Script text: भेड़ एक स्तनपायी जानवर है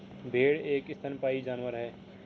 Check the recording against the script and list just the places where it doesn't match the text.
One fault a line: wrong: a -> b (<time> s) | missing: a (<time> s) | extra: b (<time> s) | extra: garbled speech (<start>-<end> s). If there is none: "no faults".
no faults